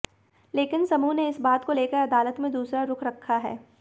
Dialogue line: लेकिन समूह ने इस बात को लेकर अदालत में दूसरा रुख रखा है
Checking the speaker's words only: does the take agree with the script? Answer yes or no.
yes